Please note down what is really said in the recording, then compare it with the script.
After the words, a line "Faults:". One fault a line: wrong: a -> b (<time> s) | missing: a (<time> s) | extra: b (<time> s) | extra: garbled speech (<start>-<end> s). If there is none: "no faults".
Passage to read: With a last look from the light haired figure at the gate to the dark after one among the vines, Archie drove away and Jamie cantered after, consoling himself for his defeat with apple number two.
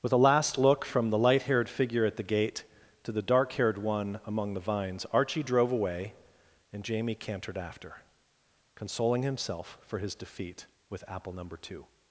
With a last look from the light haired figure at the gate to the dark haired one among the vines, Archie drove away and Jamie cantered after, consoling himself for his defeat with apple number two.
Faults:
wrong: after -> haired (3.5 s)